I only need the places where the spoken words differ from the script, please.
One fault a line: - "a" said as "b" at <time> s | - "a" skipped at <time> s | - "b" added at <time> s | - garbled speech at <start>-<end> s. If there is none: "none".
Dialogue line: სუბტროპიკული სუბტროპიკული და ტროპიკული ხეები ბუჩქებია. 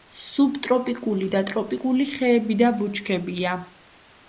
- "სუბტროპიკული" skipped at 1.3 s
- "და" added at 2.6 s